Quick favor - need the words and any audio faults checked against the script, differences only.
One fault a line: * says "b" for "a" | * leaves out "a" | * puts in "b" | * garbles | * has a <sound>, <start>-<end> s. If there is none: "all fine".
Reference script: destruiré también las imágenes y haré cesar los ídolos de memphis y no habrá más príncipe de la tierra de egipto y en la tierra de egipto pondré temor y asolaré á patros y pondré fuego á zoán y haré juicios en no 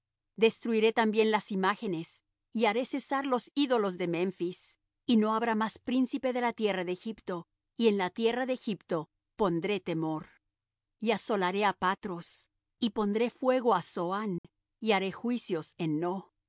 * has a dropout, 14.4-14.4 s